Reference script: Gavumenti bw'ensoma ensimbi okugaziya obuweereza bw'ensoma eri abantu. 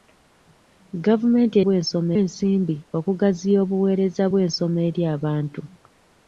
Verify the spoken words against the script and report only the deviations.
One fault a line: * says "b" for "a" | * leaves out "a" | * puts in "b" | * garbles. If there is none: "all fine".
all fine